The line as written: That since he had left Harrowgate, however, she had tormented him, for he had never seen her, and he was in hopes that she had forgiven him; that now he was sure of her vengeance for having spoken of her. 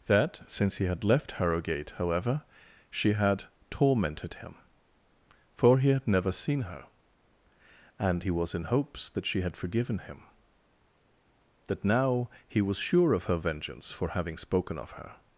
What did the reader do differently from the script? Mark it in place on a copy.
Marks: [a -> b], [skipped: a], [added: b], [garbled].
That since he had left Harrowgate, however, she had tormented him, for he had never seen her, and he was in hopes that she had forgiven him; that now he was sure of her vengeance for having spoken of her.